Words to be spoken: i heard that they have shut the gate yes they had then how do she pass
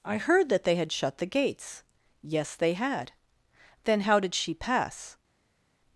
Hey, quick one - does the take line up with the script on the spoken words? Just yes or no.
no